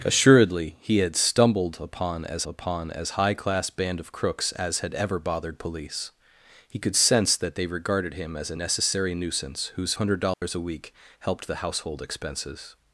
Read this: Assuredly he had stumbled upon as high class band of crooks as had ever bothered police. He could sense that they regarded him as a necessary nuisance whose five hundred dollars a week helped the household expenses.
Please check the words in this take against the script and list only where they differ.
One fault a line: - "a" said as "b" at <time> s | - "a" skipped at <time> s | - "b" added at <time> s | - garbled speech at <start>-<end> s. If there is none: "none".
- "upon as" added at 2.4 s
- "five" skipped at 9.9 s